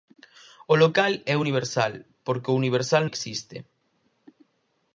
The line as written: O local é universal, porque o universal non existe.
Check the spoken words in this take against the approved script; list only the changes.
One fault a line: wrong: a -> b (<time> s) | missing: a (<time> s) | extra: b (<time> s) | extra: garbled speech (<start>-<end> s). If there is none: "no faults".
missing: non (3.0 s)